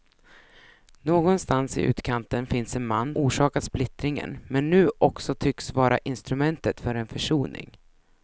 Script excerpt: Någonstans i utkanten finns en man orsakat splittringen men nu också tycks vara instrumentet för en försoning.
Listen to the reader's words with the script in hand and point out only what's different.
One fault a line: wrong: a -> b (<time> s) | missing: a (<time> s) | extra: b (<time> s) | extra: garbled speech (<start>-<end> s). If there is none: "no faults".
no faults